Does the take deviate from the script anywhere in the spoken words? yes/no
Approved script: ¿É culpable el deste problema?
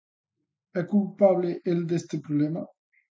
no